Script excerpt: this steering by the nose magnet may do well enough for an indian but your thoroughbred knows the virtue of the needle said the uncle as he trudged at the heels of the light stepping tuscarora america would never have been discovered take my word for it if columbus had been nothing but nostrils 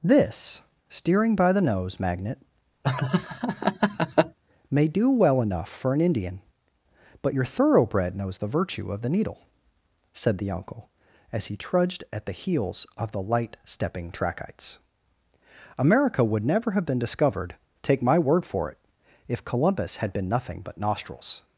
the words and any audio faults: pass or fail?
fail